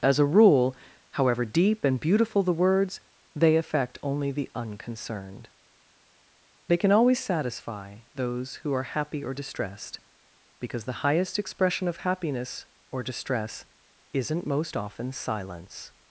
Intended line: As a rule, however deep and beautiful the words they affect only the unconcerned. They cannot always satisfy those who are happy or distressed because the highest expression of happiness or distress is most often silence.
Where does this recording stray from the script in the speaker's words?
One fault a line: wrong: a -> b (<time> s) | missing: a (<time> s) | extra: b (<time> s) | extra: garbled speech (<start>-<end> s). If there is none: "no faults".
wrong: cannot -> can (6.8 s)
wrong: is -> isn't (14.1 s)